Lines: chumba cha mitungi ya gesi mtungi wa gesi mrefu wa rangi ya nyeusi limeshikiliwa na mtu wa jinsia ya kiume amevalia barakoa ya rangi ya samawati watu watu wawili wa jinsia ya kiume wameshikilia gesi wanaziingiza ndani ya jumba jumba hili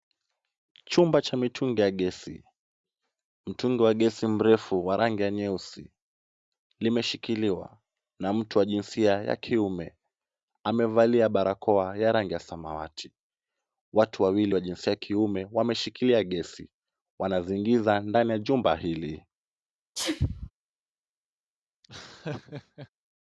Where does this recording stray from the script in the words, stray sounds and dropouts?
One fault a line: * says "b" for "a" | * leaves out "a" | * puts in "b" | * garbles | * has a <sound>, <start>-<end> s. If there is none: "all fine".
* leaves out "watu"
* leaves out "jumba"
* has a sneeze, 20.0-20.5 s
* has a laugh, 21.8-22.9 s